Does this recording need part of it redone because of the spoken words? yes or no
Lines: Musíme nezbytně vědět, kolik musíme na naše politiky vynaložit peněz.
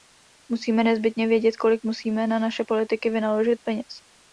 no